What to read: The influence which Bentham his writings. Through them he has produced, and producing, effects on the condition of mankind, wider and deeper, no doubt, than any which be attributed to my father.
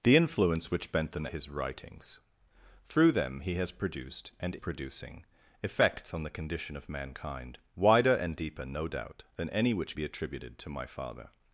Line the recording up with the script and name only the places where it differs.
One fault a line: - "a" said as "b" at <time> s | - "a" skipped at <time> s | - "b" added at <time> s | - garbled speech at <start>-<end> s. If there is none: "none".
none